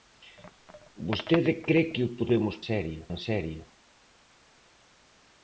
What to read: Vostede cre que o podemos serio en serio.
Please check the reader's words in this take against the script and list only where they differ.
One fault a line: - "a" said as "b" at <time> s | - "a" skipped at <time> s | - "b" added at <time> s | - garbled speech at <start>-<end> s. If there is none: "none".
none